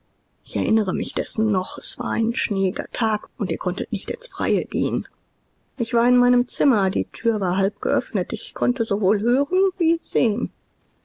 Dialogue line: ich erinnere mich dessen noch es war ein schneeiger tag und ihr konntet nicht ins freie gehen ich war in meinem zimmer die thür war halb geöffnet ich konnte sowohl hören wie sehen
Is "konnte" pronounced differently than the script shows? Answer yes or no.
no